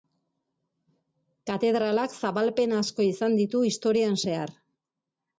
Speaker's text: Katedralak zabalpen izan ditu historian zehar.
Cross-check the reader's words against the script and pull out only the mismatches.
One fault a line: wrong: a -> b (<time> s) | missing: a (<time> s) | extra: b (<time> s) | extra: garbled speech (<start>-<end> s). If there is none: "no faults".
extra: asko (2.8 s)